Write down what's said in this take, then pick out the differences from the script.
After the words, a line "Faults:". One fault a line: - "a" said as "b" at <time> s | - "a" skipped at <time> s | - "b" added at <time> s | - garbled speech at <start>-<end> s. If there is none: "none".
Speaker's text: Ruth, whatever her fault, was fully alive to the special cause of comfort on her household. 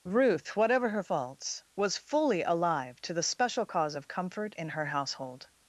Ruth, whatever her faults, was fully alive to the special cause of comfort in her household.
Faults:
- "fault" said as "faults" at 1.0 s
- "on" said as "in" at 4.6 s